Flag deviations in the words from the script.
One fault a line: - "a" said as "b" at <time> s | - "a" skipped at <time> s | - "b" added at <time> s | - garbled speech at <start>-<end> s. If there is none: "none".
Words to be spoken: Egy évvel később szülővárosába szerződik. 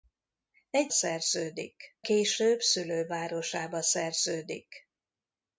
- "évvel" said as "szerződik" at 0.9 s